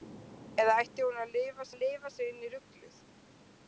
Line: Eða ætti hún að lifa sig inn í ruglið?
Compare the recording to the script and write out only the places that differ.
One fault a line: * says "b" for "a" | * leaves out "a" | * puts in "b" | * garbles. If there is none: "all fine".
* puts in "að lifa"